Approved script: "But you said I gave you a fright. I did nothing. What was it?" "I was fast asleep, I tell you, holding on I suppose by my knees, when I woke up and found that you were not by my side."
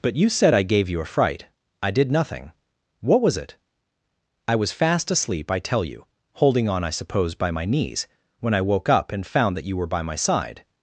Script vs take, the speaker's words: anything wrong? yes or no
yes